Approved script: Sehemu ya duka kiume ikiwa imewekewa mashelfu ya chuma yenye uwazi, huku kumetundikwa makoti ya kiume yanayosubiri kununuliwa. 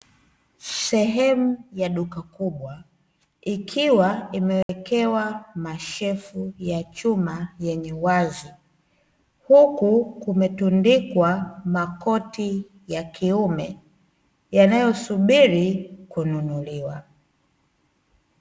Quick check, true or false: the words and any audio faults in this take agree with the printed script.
false